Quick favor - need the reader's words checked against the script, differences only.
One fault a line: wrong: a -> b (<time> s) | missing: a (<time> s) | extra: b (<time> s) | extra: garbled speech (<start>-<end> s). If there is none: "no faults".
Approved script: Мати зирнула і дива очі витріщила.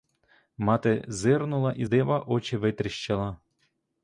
no faults